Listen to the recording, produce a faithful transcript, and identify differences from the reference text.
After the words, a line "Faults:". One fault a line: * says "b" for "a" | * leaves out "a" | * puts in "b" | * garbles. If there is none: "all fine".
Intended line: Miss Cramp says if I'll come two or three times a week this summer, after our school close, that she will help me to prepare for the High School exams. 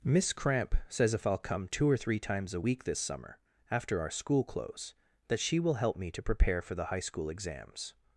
Miss Cramp says if I'll come two or three times a week this summer, after our school close, that she will help me to prepare for the High School exams.
Faults:
all fine